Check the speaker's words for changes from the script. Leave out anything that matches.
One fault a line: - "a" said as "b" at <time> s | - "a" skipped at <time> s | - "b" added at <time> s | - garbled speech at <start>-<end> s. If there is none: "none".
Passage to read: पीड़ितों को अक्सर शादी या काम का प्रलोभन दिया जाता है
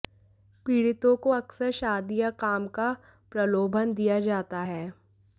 none